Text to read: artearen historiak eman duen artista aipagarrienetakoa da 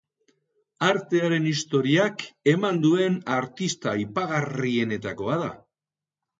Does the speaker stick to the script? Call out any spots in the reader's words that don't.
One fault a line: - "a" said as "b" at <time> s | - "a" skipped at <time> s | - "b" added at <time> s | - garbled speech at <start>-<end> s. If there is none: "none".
none